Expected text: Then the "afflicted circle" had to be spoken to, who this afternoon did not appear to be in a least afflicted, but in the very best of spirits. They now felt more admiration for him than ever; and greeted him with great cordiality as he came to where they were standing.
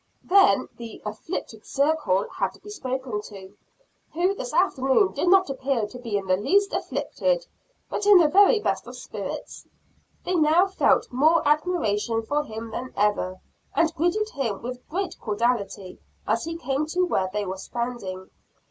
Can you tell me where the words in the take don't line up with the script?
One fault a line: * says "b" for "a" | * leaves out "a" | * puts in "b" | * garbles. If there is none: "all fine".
* says "the" for "a"